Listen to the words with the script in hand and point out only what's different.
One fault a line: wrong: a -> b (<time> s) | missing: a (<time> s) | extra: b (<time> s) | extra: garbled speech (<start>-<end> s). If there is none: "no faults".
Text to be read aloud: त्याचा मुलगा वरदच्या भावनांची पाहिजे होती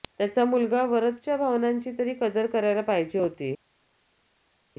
extra: तरी कदर करायला (2.0 s)